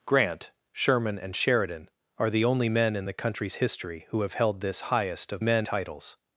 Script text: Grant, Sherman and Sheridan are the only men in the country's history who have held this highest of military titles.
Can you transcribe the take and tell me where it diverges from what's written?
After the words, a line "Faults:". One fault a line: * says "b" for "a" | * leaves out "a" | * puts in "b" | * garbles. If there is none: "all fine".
Grant, Sherman and Sheridan are the only men in the country's history who have held this highest of men titles.
Faults:
* says "men" for "military"